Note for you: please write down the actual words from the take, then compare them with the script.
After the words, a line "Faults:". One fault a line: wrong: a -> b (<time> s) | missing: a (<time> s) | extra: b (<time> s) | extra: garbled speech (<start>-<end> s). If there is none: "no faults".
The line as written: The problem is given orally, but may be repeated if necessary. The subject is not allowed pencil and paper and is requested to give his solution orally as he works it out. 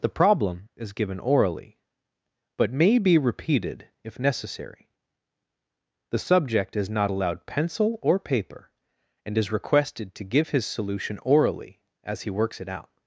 The problem is given orally, but may be repeated if necessary. The subject is not allowed pencil or paper and is requested to give his solution orally as he works it out.
Faults:
wrong: and -> or (8.0 s)